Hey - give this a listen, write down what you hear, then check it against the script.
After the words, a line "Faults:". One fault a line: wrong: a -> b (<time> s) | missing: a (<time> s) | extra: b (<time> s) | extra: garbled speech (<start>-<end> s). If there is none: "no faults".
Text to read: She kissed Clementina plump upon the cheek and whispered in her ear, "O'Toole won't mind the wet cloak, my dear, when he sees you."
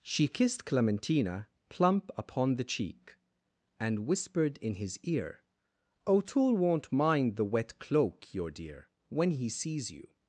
She kissed Clementina plump upon the cheek and whispered in his ear, "O'Toole won't mind the wet cloak, your dear, when he sees you."
Faults:
wrong: her -> his (4.8 s)
wrong: my -> your (8.3 s)